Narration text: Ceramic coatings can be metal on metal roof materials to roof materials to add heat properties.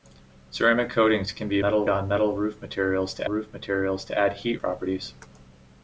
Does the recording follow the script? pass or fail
pass